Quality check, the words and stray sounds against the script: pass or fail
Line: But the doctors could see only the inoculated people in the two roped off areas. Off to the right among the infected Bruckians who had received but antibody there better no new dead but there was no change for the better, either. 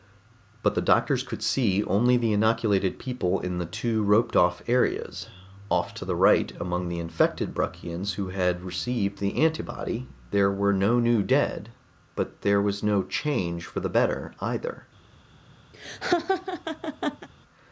fail